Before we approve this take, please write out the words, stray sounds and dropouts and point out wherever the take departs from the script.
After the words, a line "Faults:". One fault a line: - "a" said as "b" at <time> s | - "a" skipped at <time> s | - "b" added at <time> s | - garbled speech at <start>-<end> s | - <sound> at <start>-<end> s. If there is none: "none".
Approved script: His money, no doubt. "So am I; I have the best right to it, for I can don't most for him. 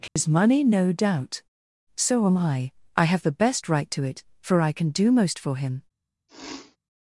His money, no doubt. "So am I; I have the best right to it, for I can do most for him.
Faults:
- dropout at 0.1-0.2 s
- "don't" said as "do" at 4.9 s
- sneeze at 6.3-6.8 s